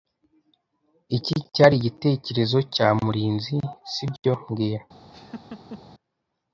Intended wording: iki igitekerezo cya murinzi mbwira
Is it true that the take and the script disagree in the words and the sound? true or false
true